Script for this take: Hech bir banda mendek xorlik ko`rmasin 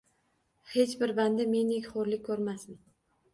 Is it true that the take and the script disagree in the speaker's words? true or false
false